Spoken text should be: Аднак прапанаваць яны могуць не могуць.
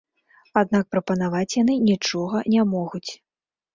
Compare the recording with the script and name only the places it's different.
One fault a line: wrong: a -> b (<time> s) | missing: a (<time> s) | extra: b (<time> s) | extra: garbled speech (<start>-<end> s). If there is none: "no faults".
wrong: могуць -> нічога (1.9 s)